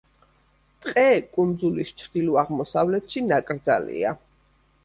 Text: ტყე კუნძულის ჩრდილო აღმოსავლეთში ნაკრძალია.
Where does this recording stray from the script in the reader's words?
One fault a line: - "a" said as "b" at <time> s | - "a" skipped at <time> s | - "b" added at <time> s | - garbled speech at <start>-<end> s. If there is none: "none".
none